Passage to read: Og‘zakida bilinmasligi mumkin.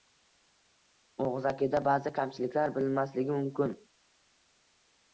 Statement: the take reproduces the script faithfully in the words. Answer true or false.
false